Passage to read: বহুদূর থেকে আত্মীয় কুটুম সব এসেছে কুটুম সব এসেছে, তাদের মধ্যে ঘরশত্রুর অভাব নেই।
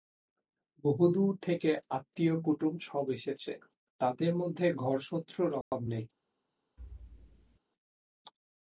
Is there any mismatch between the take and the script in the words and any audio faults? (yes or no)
yes